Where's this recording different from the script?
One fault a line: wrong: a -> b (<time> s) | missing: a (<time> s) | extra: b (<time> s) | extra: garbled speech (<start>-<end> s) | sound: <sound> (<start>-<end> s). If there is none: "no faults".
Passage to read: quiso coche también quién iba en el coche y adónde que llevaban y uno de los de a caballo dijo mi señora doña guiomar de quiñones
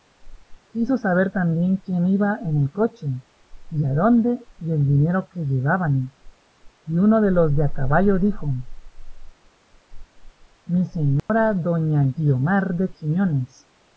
wrong: coche -> saber (1.0 s)
extra: y el dinero (4.6 s)
sound: dropout (11.2-11.3 s)